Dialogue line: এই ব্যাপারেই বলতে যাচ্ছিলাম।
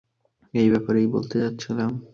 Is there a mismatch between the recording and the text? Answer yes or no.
no